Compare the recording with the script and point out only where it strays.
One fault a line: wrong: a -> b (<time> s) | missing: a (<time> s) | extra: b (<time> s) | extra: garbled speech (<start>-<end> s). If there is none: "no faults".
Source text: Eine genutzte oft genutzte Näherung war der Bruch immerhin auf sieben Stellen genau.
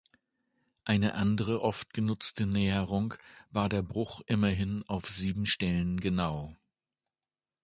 wrong: genutzte -> andere (1.1 s)